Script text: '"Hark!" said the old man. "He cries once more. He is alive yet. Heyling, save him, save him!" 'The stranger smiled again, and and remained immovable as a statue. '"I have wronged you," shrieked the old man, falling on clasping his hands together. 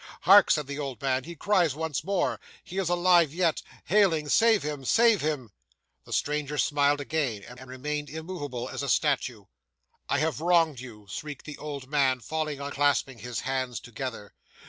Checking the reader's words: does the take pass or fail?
pass